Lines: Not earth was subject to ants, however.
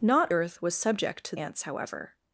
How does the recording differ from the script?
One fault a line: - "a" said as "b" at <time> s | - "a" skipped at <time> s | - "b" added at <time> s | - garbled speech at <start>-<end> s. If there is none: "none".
none